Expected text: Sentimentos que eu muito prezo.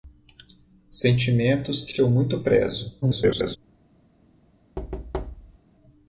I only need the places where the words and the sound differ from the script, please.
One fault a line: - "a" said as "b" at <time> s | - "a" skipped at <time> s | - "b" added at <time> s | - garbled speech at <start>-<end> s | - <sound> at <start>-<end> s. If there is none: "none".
- "que" added at 1.9 s
- garbled speech at 3.0-3.6 s
- thud at 4.8-5.6 s